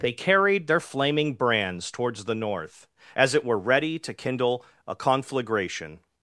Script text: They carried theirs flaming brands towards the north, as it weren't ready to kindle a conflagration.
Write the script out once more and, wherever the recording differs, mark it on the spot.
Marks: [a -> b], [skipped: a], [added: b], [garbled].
They carried [theirs -> their] flaming brands towards the north, as it [weren't -> were] ready to kindle a conflagration.